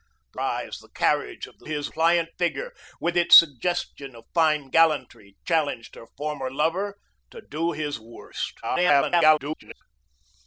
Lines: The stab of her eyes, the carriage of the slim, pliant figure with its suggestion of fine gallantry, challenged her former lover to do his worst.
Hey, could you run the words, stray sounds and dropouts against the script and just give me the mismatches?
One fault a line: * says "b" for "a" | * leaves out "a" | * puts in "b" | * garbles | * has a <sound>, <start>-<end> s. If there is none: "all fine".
* leaves out "stab of her"
* says "his" for "slim"
* garbles